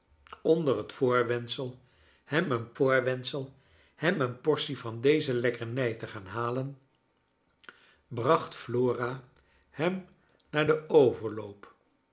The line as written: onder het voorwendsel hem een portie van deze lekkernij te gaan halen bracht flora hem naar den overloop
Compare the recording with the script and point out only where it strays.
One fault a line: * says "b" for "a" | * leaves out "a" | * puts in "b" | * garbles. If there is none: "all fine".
* puts in "voorwendsel hem een"